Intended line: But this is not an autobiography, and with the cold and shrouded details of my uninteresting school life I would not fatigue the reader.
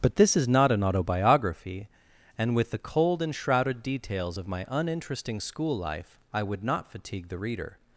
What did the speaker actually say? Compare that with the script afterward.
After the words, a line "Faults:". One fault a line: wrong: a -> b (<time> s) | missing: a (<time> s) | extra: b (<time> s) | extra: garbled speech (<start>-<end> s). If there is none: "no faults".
But this is not an autobiography, and with the cold and shrouded details of my uninteresting school life I would not fatigue the reader.
Faults:
no faults